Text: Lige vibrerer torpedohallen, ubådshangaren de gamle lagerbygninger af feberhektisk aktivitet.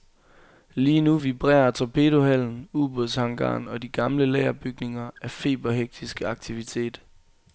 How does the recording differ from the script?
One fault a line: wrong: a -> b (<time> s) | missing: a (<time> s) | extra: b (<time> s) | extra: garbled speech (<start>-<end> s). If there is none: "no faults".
extra: nu (1.0 s)
extra: og (3.7 s)